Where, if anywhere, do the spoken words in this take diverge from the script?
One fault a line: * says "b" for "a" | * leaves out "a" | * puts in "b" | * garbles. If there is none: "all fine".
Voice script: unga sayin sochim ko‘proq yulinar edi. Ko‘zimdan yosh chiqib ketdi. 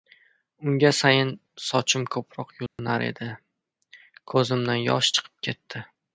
all fine